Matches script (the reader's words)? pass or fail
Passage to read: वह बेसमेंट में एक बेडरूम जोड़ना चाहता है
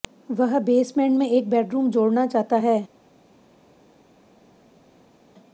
pass